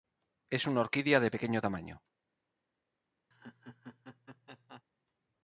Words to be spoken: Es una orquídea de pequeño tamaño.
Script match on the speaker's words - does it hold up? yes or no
yes